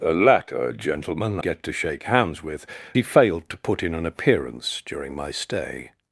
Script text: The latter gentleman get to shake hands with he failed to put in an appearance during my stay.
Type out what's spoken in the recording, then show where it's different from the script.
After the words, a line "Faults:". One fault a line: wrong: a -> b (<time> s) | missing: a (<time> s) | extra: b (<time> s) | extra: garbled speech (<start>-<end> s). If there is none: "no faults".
The latter gentleman get to shake hands with he failed to put in an appearance during my stay.
Faults:
no faults